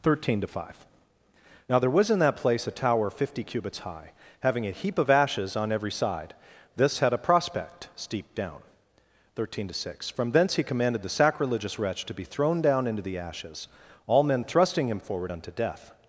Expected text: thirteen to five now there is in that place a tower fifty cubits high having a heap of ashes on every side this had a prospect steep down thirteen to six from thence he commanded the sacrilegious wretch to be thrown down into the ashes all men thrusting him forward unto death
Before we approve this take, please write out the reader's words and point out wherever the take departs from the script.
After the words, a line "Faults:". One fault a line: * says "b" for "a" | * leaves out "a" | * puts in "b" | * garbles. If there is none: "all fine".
thirteen to five now there was in that place a tower fifty cubits high having a heap of ashes on every side this had a prospect steep down thirteen to six from thence he commanded the sacrilegious wretch to be thrown down into the ashes all men thrusting him forward unto death
Faults:
* says "was" for "is"